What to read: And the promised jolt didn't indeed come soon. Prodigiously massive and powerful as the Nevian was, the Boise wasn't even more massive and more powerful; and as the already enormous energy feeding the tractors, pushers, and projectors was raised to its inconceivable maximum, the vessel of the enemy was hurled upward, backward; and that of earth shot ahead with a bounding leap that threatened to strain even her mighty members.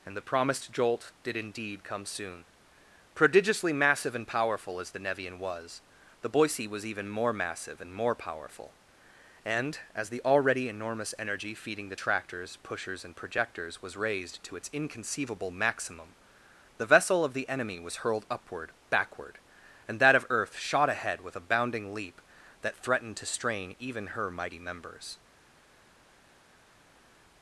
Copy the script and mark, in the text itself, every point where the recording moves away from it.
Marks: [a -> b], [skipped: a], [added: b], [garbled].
And the promised jolt [didn't -> did] indeed come soon. Prodigiously massive and powerful as the Nevian was, the Boise [wasn't -> was] even more massive and more powerful; and as the already enormous energy feeding the tractors, pushers, and projectors was raised to its inconceivable maximum, the vessel of the enemy was hurled upward, backward; and that of earth shot ahead with a bounding leap that threatened to strain even her mighty members.